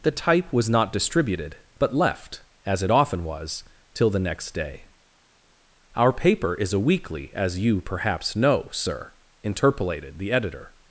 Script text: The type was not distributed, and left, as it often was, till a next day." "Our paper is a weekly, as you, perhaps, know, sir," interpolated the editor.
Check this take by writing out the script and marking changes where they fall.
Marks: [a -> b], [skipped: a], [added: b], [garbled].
The type was not distributed, [and -> but] left, as it often was, till [a -> the] next day." "Our paper is a weekly, as you, perhaps, know, sir," interpolated the editor.